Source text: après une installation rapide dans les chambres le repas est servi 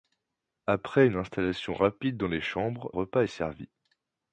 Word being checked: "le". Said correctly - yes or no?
no